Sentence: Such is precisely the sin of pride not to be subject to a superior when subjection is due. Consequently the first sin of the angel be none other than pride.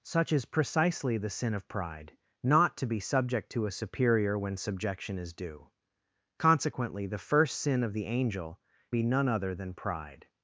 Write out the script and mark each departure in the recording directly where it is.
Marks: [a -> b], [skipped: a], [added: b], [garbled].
Such is precisely the sin of pride not to be subject to a superior when subjection is due. Consequently the first sin of the angel be none other than pride.